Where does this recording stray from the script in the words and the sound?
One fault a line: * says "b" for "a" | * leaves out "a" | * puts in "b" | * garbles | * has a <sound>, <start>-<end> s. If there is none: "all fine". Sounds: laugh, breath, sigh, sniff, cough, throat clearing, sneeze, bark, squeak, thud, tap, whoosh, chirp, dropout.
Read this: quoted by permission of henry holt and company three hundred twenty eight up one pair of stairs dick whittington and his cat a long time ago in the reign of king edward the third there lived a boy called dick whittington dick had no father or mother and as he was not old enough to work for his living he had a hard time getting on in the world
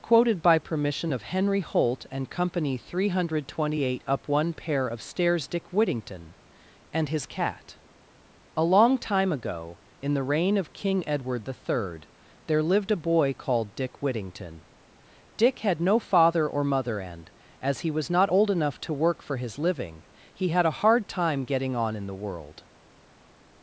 all fine